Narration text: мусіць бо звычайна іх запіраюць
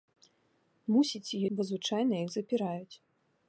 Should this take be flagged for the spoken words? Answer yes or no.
no